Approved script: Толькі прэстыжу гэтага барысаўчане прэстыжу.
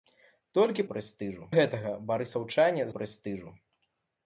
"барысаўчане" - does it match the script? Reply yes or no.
yes